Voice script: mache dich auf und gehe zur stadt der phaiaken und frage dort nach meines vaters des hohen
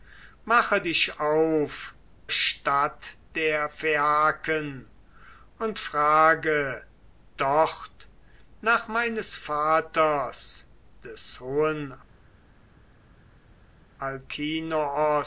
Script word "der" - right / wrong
right